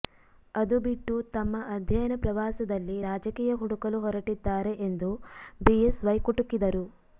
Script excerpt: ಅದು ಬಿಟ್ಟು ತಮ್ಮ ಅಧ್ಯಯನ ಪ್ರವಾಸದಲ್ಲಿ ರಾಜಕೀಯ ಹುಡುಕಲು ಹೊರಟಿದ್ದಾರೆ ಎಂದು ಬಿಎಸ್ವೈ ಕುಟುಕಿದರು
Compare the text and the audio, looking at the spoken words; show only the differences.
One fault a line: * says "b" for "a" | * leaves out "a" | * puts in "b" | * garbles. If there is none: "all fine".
all fine